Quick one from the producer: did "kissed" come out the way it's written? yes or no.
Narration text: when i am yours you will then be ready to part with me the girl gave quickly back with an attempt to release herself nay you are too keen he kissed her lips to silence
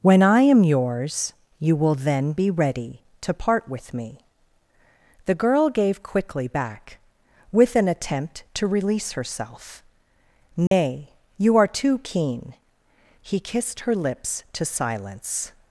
yes